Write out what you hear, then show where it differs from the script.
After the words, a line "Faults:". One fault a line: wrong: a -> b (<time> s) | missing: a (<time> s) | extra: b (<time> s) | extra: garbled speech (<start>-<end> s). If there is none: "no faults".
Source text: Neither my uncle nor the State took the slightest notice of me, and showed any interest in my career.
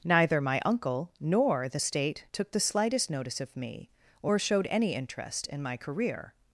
Neither my uncle nor the State took the slightest notice of me, or showed any interest in my career.
Faults:
wrong: and -> or (4.2 s)